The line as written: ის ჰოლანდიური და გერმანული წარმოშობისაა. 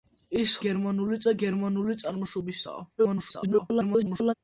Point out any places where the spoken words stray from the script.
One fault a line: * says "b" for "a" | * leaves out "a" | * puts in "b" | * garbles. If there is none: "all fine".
* says "გერმანული" for "ჰოლანდიური"
* garbles